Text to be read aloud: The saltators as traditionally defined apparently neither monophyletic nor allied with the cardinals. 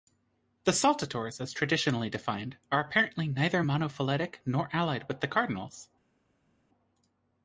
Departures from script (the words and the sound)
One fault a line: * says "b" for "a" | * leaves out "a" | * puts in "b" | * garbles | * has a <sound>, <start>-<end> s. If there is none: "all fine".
* puts in "are"